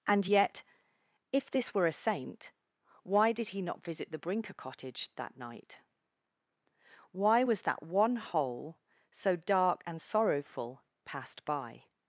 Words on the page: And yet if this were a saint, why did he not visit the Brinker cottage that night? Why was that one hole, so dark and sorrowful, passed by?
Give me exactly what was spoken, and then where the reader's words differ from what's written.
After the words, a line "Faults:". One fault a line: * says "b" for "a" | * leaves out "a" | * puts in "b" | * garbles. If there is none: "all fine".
And yet if this were a saint, why did he not visit the Brinker cottage that night? Why was that one hole, so dark and sorrowful, passed by?
Faults:
all fine